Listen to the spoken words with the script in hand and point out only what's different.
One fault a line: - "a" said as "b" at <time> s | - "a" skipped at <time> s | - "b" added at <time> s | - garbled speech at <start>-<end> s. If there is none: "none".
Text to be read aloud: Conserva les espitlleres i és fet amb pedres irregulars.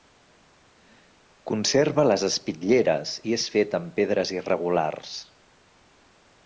none